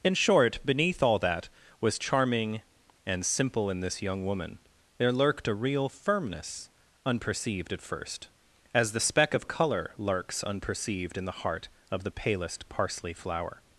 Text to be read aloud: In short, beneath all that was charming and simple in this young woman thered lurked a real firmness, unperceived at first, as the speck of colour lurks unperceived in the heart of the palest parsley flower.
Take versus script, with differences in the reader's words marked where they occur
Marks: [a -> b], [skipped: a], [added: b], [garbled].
In short, beneath all that was charming and simple in this young woman [thered -> there] lurked a real firmness, unperceived at first, as the speck of colour lurks unperceived in the heart of the palest parsley flower.